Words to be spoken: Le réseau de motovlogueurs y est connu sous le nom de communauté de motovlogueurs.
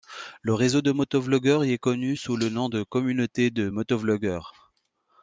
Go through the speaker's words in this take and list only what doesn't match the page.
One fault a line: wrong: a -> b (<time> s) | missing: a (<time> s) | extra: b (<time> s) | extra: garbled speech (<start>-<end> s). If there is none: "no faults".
no faults